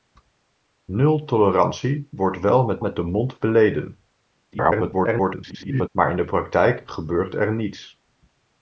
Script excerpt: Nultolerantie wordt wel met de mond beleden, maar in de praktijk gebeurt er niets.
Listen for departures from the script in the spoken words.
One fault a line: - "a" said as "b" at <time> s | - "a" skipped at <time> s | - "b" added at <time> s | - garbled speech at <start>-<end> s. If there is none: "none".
- "met" added at 2.8 s
- garbled speech at 4.5-5.9 s